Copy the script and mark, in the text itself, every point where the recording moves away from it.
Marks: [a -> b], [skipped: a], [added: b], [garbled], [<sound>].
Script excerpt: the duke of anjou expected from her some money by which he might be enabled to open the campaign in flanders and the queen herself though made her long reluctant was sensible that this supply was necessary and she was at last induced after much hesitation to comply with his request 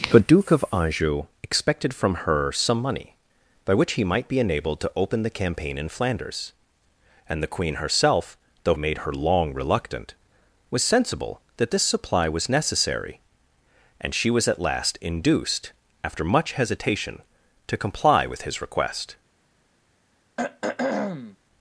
the duke of anjou expected from her some money by which he might be enabled to open the campaign in flanders and the queen herself though made her long reluctant was sensible that this supply was necessary and she was at last induced after much hesitation to comply with his request [throat clearing]